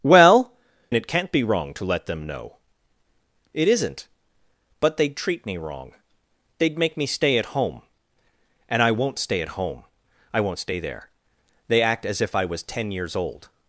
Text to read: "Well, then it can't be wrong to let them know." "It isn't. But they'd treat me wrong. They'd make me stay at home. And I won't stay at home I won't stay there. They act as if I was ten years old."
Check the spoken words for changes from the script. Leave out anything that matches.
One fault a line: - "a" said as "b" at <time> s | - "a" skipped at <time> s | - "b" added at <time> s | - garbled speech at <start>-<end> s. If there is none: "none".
- "then" skipped at 0.5 s